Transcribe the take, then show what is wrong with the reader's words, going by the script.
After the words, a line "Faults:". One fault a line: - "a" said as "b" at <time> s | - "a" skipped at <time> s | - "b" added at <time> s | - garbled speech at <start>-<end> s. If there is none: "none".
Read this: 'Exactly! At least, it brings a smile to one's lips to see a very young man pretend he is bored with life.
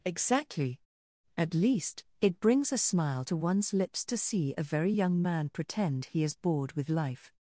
'Exactly! At least, it brings a smile to one's lips to see a very young man pretend he is bored with life.
Faults:
none